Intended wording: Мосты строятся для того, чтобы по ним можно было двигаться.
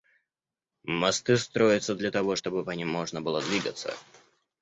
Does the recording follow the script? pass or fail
pass